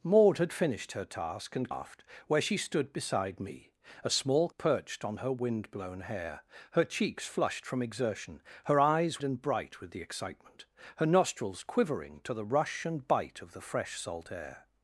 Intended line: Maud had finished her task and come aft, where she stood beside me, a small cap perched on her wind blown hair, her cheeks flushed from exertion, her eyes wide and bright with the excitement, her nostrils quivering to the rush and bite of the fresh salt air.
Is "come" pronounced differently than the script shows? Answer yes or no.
yes